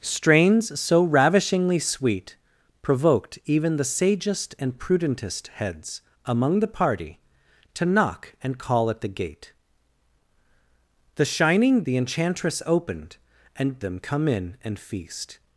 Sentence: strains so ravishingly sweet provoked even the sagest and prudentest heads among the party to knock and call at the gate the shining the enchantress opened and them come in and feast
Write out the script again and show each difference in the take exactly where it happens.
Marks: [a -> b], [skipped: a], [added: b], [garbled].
strains so ravishingly sweet provoked even the sagest and prudentest heads among the party to knock and call at the gate the shining the enchantress opened and them come in and feast